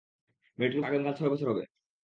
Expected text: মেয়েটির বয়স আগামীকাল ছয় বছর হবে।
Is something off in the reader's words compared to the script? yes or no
yes